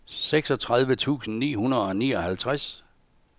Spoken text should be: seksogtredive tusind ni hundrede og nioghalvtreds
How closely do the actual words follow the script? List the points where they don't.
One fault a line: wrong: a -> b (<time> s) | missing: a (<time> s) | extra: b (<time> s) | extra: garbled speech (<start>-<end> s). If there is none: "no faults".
no faults